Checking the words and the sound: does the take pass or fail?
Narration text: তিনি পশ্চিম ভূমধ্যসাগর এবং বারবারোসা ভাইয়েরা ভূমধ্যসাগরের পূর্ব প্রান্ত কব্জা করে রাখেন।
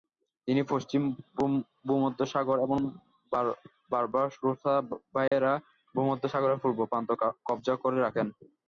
fail